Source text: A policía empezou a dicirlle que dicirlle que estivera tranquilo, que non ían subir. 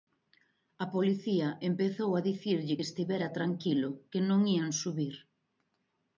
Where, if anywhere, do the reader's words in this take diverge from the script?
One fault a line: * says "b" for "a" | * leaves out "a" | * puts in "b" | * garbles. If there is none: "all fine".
* leaves out "dicirlle que"